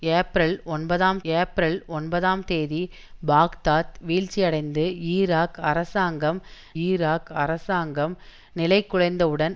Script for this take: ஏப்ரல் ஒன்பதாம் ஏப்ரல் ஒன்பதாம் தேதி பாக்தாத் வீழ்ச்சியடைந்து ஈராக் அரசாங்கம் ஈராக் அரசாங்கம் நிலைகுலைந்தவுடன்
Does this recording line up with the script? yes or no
yes